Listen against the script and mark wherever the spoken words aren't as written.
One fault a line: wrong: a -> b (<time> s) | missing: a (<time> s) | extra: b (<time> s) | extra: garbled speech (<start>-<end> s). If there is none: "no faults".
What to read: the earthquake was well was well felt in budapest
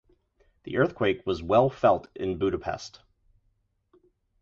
missing: was well (1.7 s)